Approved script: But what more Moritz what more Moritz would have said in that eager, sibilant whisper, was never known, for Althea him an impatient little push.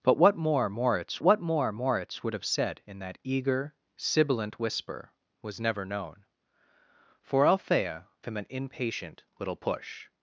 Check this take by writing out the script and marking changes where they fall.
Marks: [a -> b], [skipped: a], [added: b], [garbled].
But what more Moritz what more Moritz would have said in that eager, sibilant whisper, was never known, for Althea him an impatient little push.